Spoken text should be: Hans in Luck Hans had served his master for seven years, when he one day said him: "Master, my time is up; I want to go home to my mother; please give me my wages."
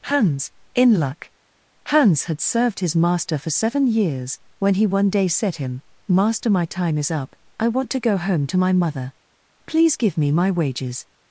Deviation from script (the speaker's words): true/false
false